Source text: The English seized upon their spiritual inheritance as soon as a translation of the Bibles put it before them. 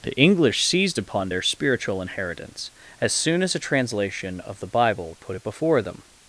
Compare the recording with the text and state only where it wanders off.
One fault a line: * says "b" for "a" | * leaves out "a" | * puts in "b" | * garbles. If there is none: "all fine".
* says "Bible" for "Bibles"